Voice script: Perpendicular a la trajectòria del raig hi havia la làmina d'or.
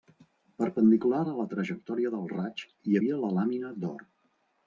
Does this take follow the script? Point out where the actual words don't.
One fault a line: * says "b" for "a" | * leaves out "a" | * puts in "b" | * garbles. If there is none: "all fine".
all fine